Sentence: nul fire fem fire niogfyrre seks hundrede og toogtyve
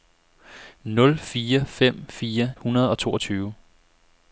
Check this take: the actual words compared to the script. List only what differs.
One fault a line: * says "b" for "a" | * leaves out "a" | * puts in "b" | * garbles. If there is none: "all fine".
* leaves out "niogfyrre seks"